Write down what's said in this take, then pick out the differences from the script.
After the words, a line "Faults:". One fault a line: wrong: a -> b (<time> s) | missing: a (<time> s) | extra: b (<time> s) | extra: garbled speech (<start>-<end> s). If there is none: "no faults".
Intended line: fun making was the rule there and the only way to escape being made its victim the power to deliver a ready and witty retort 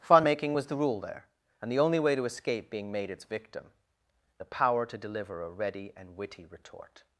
fun making was the rule there and the only way to escape being made its victim the power to deliver a ready and witty retort
Faults:
no faults